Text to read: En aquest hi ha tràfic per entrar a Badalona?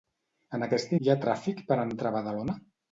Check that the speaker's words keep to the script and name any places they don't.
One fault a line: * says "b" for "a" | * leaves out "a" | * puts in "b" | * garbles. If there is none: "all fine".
all fine